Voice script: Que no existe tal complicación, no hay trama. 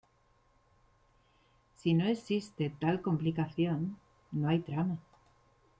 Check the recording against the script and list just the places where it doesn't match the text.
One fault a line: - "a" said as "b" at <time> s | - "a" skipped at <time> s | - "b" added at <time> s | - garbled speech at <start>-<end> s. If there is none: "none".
- "Que" said as "Si" at 1.8 s